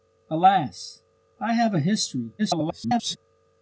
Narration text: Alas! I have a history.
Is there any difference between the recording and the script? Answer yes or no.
yes